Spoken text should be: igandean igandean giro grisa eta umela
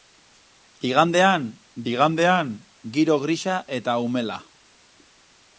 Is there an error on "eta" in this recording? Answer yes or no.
no